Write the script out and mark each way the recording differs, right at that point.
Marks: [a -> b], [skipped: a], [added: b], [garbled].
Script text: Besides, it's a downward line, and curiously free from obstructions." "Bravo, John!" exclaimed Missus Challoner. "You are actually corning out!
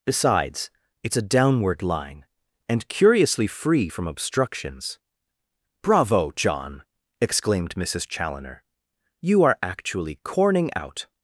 Besides, it's a downward line, and curiously free from obstructions." "Bravo, John!" exclaimed Missus Challoner. "You are actually corning out!